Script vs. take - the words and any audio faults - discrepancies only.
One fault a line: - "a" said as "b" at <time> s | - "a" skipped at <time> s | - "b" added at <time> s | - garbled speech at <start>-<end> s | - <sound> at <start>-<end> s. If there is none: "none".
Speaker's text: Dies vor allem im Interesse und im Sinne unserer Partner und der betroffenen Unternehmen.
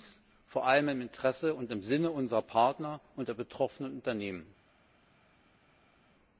none